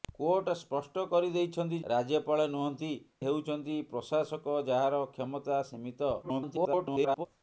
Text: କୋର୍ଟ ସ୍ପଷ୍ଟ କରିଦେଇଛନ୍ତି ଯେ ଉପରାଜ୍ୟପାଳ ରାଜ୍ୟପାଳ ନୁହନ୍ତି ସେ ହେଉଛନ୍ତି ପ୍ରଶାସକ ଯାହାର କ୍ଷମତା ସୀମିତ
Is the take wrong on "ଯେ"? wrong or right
wrong